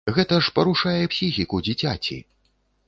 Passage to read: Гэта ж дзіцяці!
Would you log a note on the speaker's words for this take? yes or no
yes